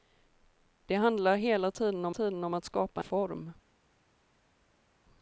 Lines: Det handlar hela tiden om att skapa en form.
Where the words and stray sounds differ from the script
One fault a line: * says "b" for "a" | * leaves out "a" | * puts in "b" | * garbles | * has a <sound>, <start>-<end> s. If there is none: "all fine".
* puts in "tiden om"
* leaves out "en"